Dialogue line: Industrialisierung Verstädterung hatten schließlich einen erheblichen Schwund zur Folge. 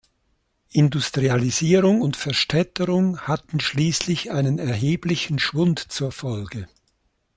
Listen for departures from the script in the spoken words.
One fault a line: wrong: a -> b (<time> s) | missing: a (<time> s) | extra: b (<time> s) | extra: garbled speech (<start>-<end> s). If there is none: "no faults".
extra: und (2.0 s)